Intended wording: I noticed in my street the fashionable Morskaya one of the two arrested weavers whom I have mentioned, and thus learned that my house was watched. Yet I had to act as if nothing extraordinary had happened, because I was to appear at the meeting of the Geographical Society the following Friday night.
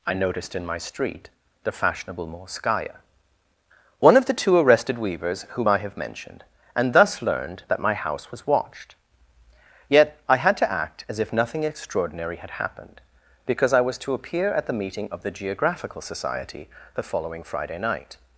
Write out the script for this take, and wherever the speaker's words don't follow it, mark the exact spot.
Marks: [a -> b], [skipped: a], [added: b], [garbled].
I noticed in my street the fashionable Morskaya one of the two arrested weavers whom I have mentioned, and thus learned that my house was watched. Yet I had to act as if nothing extraordinary had happened, because I was to appear at the meeting of the Geographical Society the following Friday night.